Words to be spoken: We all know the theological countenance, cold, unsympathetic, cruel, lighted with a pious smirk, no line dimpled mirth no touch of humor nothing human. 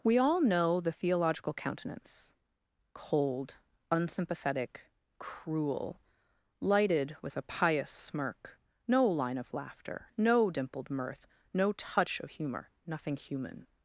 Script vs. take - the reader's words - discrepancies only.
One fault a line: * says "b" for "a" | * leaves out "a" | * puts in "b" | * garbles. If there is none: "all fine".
* puts in "of laughter no"